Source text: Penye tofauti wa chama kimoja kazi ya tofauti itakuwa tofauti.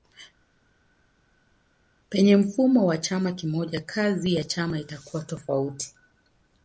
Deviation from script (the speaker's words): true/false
true